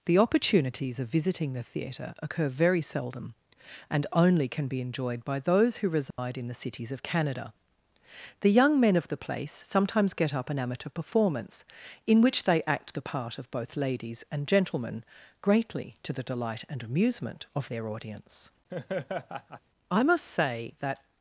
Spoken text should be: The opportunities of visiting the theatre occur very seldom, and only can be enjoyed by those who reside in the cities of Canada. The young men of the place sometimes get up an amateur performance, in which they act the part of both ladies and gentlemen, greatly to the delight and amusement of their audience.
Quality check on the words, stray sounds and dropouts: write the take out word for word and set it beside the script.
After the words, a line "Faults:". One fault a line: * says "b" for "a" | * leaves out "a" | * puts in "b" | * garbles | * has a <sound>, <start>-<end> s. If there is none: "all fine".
The opportunities of visiting the theatre occur very seldom, and only can be enjoyed by those who reside in the cities of Canada. The young men of the place sometimes get up an amateur performance, in which they act the part of both ladies and gentlemen, greatly to the delight and amusement of their audience. I must say that
Faults:
* has a dropout, 6.1-6.2 s
* has a laugh, 18.7-19.6 s
* puts in "I must say that"